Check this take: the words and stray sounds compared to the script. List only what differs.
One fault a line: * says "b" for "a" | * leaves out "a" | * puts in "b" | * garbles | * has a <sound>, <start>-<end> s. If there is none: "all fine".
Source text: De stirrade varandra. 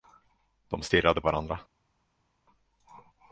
all fine